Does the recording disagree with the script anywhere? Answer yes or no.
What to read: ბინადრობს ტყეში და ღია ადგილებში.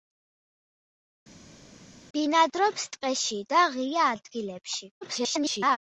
yes